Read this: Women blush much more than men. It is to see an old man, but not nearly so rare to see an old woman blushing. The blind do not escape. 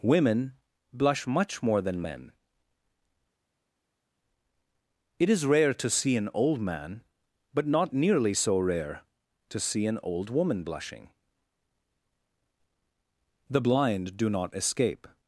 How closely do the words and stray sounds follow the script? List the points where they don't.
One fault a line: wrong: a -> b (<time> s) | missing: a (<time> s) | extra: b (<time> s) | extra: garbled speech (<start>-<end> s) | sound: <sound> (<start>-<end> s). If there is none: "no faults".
extra: rare (5.5 s)